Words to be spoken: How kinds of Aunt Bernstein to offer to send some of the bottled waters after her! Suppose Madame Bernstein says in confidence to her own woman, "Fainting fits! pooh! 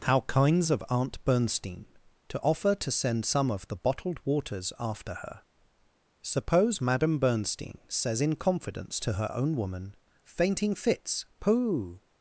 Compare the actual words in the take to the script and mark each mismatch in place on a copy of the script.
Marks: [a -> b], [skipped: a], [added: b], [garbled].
How kinds of Aunt Bernstein to offer to send some of the bottled waters after her! Suppose Madame Bernstein says in confidence to her own woman, "Fainting fits! pooh!